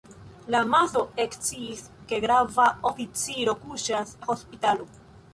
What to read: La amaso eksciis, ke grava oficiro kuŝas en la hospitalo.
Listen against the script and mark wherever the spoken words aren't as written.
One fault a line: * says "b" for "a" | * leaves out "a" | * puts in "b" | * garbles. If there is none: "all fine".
* leaves out "en"